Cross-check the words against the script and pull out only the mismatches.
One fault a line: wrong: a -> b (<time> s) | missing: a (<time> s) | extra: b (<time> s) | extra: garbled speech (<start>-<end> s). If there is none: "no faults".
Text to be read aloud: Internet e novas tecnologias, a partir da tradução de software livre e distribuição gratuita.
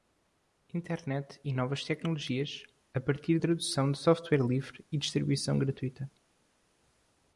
missing: da (3.4 s)